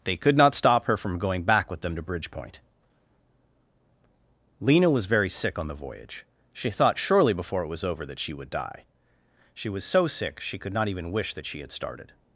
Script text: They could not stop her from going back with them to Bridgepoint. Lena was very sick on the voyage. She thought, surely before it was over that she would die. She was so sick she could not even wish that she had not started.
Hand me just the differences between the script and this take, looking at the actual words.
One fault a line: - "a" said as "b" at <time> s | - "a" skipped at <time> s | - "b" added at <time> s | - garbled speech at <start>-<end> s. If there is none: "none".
- "not" skipped at 11.7 s